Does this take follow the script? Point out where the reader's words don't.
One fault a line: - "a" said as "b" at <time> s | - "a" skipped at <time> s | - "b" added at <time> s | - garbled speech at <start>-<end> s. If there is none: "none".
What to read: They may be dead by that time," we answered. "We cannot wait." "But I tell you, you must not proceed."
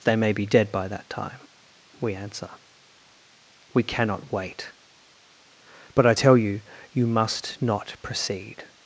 - "answered" said as "answer" at 2.1 s